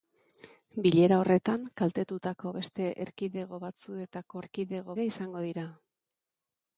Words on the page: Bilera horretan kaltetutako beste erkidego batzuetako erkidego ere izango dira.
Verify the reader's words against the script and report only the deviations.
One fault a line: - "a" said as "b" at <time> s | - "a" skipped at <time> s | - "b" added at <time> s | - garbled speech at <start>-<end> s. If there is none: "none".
none